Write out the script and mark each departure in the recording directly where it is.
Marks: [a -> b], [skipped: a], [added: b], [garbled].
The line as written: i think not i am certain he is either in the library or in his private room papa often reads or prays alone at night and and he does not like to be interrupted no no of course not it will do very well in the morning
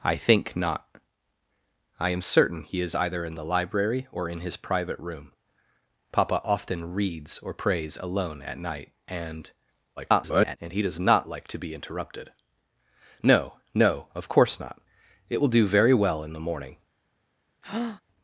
i think not i am certain he is either in the library or in his private room papa often reads or prays alone at night and [garbled] and he does not like to be interrupted no no of course not it will do very well in the morning